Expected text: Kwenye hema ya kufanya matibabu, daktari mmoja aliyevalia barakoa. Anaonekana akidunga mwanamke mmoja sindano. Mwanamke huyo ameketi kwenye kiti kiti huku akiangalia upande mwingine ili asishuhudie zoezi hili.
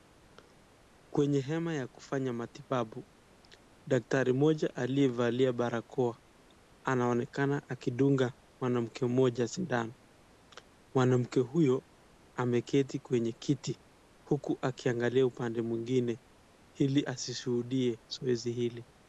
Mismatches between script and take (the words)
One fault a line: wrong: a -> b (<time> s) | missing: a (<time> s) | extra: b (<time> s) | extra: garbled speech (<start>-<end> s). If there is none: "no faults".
missing: kiti (13.8 s)